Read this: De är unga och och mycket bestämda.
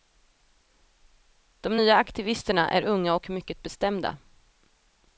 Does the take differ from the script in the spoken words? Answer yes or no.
yes